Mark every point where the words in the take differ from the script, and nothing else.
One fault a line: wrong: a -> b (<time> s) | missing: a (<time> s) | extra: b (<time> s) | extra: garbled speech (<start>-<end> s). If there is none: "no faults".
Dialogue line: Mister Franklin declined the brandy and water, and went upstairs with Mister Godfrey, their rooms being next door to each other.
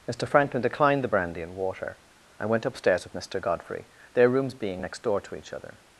no faults